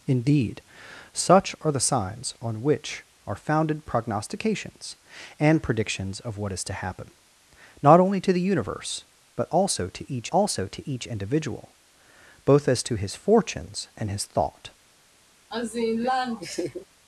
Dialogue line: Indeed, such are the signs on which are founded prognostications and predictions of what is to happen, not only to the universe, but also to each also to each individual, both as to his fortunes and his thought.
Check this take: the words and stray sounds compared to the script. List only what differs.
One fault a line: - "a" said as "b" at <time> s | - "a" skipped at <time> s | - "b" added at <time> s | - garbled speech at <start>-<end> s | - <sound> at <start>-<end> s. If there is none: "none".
- laugh at 15.5-16.9 s